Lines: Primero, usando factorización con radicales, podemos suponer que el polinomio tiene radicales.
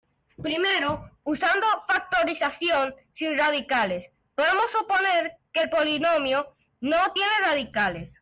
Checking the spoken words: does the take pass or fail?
fail